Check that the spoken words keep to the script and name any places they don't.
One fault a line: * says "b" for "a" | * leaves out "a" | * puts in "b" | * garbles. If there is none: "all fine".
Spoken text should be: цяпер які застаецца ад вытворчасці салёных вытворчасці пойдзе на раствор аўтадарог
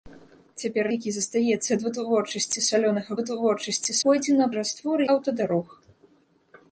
all fine